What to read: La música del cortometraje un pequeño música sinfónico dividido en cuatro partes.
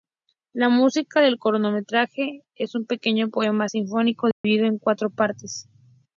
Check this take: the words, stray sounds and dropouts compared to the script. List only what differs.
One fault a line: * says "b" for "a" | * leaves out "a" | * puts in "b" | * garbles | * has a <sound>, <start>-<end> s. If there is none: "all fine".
* puts in "es"
* says "poema" for "música"
* has a dropout, 4.3-4.4 s